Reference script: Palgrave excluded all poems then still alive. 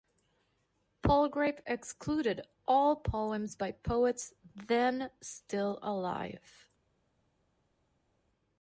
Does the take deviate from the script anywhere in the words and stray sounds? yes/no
yes